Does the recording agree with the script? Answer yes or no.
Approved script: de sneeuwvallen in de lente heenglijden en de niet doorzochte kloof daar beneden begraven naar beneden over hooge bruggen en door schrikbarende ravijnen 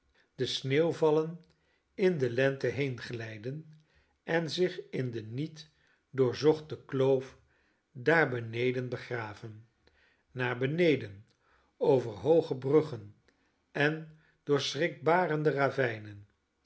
no